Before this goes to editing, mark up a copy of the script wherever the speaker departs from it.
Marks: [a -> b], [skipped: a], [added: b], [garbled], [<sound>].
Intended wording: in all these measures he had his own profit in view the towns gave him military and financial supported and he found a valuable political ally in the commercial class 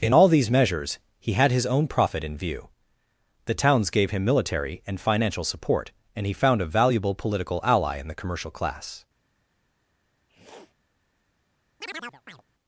in all these measures he had his own profit in view the towns gave him military and financial [supported -> support] and he found a valuable political ally in the commercial class [sniff] [chirp]